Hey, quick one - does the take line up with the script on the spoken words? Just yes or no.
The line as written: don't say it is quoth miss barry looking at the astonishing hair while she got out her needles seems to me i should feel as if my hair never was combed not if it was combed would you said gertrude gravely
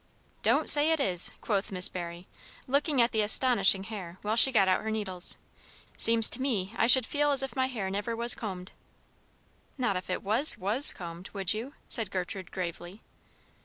no